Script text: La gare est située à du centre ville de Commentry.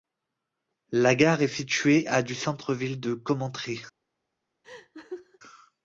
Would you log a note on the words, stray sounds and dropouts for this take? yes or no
yes